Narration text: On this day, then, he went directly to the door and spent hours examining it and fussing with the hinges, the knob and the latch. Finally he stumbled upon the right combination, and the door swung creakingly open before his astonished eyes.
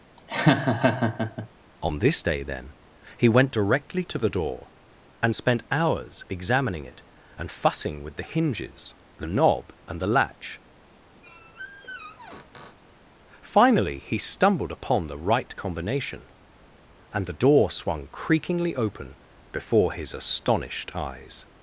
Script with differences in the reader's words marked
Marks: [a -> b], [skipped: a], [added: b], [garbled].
On this day, then, he went directly to the door and spent hours examining it and fussing with the hinges, the knob and the latch. Finally he stumbled upon the right combination, and the door swung creakingly open before his astonished eyes.